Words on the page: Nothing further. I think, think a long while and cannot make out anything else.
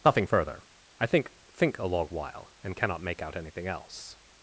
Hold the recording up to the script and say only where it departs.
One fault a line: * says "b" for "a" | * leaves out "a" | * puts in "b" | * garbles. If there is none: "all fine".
all fine